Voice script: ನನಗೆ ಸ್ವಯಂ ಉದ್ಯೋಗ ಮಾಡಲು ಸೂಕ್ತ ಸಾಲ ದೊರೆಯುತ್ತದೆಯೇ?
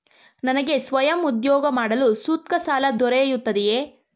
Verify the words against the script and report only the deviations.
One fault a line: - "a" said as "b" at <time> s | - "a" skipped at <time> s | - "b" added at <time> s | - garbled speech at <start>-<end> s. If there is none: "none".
none